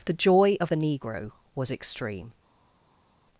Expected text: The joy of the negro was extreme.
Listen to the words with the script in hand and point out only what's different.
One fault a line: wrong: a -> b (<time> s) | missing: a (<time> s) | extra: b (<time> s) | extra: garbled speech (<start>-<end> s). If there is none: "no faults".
no faults